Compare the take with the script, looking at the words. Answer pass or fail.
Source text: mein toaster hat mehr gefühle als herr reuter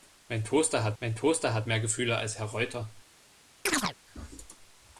fail